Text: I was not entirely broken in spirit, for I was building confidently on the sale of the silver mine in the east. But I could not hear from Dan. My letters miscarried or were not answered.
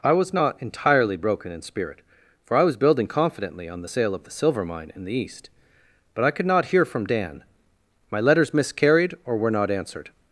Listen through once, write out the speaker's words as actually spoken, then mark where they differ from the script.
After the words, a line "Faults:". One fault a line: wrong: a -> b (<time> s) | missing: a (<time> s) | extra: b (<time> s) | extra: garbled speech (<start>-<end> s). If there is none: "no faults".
I was not entirely broken in spirit, for I was building confidently on the sale of the silver mine in the east. But I could not hear from Dan. My letters miscarried or were not answered.
Faults:
no faults